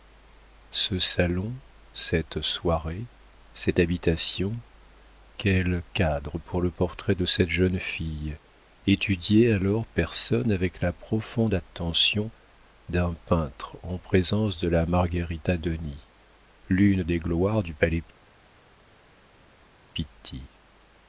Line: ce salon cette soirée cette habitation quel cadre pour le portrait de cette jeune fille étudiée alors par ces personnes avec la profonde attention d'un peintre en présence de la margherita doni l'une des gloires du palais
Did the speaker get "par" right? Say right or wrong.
wrong